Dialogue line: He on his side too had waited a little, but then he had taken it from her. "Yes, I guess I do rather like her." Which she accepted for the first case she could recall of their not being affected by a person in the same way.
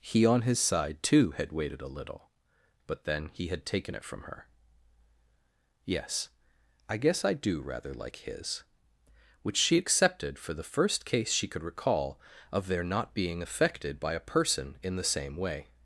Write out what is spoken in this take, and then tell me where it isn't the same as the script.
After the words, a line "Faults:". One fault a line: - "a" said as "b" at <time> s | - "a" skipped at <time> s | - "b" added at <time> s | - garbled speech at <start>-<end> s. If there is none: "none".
He on his side too had waited a little, but then he had taken it from her. "Yes, I guess I do rather like his." Which she accepted for the first case she could recall of their not being affected by a person in the same way.
Faults:
- "her" said as "his" at 8.2 s